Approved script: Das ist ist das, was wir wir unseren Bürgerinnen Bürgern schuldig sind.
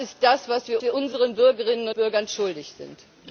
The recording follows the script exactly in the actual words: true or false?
true